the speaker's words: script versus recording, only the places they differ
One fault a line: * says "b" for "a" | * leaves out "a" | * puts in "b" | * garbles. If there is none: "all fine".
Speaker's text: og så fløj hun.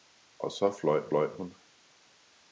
* puts in "fløj"